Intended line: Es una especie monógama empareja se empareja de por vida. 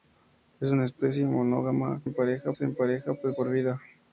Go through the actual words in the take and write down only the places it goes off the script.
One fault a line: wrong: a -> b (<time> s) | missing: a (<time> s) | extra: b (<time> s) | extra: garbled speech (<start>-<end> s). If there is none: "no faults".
no faults